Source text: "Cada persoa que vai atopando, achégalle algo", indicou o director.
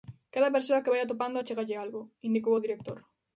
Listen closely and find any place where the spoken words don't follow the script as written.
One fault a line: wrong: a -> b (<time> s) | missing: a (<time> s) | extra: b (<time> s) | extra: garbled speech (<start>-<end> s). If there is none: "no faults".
no faults